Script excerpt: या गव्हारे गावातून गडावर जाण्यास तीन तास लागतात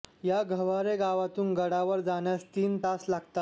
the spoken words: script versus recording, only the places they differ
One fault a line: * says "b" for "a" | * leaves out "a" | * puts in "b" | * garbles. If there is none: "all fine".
all fine